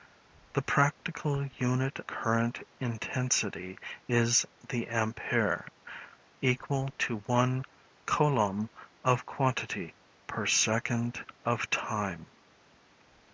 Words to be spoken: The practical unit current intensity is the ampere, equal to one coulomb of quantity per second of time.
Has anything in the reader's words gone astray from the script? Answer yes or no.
no